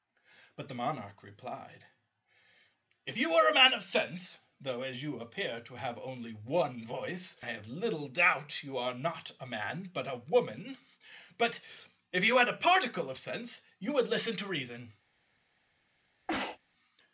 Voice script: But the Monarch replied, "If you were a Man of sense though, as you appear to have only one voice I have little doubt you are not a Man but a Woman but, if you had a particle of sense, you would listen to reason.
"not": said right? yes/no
yes